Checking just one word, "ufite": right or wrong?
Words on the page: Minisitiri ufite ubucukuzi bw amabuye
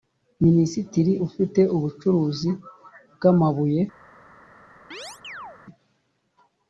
right